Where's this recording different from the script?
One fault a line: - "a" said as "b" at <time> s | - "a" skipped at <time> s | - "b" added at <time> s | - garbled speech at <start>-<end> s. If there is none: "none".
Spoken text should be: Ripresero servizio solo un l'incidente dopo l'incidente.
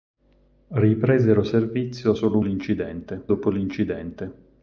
none